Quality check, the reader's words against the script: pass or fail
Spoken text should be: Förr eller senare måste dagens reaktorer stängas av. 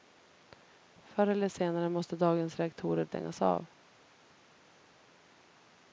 pass